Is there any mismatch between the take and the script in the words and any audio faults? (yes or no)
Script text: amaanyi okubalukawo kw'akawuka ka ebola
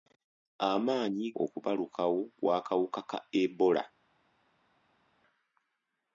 no